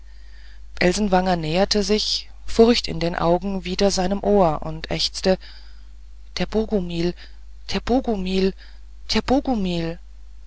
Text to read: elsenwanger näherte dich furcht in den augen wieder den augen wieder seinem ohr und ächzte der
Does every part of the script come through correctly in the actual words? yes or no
no